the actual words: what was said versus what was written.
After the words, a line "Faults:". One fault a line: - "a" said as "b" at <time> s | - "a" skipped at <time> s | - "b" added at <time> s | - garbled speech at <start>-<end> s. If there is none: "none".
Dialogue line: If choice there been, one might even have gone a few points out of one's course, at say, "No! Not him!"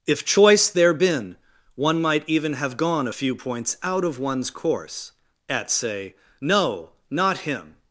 If choice there been, one might even have gone a few points out of one's course, at say, "No! Not him!"
Faults:
none